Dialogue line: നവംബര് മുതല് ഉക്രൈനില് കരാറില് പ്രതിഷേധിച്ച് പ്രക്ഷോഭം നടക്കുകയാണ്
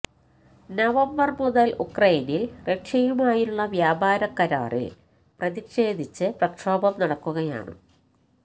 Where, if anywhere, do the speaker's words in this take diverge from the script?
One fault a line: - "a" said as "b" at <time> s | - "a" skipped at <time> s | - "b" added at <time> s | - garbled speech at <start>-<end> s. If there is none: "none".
- "റഷ്യയുമായുള്ള വ്യാപാര" added at 2.7 s